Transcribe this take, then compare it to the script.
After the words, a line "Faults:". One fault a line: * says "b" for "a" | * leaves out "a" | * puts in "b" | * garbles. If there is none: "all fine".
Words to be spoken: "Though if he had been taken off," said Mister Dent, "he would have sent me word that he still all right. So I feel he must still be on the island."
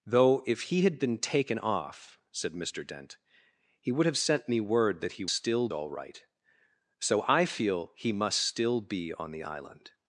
"Though if he had been taken off," said Mister Dent, "he would have sent me word that he still all right. So I feel he must still be on the island."
Faults:
all fine